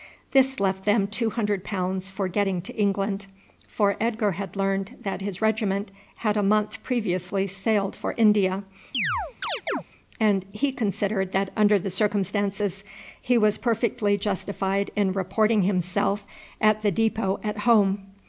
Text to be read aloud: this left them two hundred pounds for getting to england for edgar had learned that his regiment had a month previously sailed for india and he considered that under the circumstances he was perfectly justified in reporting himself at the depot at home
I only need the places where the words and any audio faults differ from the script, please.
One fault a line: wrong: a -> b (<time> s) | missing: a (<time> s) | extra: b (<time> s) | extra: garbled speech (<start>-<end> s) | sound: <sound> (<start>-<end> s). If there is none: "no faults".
sound: chirp (8.9-9.8 s)